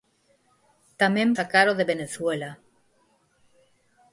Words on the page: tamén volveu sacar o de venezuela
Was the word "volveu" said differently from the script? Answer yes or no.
yes